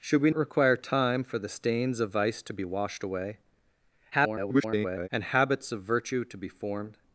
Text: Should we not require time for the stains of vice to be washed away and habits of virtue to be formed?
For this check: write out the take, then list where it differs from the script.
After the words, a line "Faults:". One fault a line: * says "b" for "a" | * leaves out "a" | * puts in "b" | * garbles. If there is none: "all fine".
Should we require time for the stains of vice to be washed away [garbled] and habits of virtue to be formed?
Faults:
* leaves out "not"
* garbles